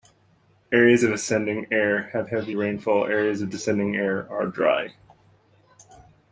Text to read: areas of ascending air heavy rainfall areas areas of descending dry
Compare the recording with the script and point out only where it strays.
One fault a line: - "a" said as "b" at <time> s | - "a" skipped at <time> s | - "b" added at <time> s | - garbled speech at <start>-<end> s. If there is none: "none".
- "have" added at 2.1 s
- "areas" skipped at 3.4 s
- "air are" added at 4.0 s